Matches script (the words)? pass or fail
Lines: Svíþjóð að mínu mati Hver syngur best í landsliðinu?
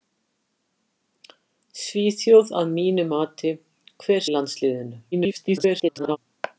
fail